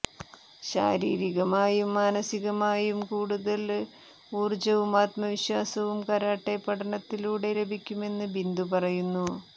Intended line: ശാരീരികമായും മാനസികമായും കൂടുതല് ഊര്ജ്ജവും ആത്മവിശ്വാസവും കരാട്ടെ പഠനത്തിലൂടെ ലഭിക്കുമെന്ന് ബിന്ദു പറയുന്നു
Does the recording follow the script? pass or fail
pass